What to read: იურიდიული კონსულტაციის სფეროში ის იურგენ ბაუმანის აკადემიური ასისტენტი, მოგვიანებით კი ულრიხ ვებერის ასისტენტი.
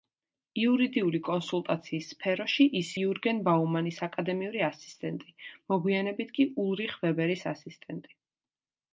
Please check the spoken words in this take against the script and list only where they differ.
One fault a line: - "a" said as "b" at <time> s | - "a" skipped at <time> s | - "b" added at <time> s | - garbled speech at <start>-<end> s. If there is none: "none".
none